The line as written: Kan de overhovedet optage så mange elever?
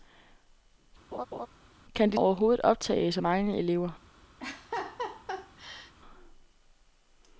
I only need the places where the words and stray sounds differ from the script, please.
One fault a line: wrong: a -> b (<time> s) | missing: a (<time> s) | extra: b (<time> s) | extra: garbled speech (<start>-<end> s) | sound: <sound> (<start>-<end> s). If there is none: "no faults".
sound: laugh (1.1-1.5 s)
sound: laugh (4.4-5.9 s)